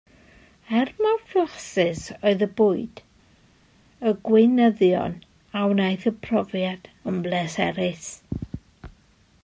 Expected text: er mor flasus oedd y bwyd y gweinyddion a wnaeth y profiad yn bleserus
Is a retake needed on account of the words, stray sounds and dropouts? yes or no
no